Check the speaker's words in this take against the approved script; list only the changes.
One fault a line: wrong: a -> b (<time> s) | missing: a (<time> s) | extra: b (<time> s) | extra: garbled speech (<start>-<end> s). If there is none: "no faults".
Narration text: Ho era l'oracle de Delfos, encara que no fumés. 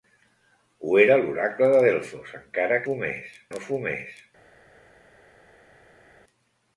wrong: que -> fumés (2.9 s)